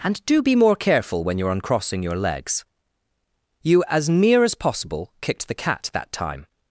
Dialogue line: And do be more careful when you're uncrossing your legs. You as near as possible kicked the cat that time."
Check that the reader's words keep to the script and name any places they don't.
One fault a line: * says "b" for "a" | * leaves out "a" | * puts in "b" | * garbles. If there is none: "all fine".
all fine